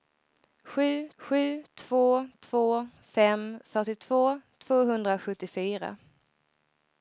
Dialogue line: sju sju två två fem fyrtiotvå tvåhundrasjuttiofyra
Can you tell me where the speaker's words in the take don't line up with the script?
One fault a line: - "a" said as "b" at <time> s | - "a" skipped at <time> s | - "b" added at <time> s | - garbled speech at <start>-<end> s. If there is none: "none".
none